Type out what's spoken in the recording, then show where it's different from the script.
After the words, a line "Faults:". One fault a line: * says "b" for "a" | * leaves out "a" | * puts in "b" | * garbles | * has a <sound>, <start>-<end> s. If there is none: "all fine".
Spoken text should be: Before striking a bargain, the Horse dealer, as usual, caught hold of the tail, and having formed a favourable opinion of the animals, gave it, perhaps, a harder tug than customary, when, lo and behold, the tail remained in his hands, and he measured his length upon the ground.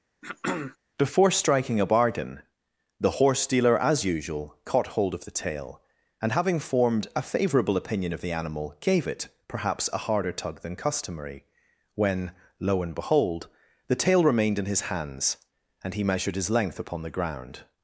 Before striking a bargain, the Horse dealer, as usual, caught hold of the tail, and having formed a favourable opinion of the animal, gave it, perhaps, a harder tug than customary, when, lo and behold, the tail remained in his hands, and he measured his length upon the ground.
Faults:
* has a throat clearing, 0.2-0.8 s
* says "animal" for "animals"